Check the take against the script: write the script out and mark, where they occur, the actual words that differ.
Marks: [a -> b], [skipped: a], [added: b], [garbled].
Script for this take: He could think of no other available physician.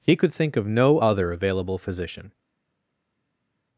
He could think of no other available physician.